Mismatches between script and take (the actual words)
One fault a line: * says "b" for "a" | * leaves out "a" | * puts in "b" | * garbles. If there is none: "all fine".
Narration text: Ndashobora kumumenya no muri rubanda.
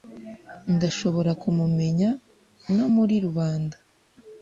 all fine